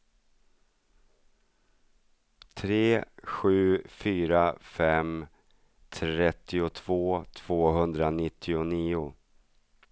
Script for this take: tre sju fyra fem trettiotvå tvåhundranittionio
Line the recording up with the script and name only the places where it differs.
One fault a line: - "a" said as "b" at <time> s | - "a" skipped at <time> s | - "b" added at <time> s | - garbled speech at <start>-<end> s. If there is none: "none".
none